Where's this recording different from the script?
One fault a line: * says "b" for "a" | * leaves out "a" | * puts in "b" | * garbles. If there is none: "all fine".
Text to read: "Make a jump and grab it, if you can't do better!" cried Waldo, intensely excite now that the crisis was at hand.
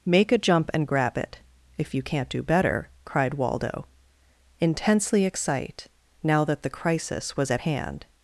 all fine